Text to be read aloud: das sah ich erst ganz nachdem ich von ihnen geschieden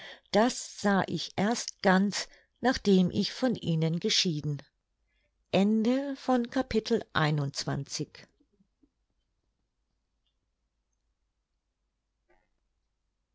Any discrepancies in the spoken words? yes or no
no